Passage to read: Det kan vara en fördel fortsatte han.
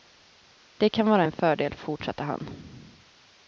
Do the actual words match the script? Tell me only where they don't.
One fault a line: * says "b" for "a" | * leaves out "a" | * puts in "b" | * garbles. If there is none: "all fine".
all fine